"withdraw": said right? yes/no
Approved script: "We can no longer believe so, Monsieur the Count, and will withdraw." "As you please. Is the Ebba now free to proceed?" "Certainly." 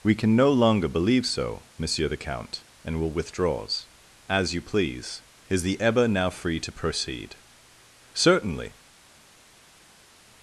no